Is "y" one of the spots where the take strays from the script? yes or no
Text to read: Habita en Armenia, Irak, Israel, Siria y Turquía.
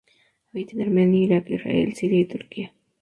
no